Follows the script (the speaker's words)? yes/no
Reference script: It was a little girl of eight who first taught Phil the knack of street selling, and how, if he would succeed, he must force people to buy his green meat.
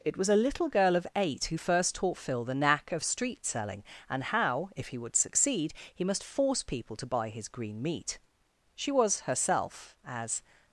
no